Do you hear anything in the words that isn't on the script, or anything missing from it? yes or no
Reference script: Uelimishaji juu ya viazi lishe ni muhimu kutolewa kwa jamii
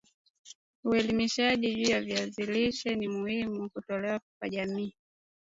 no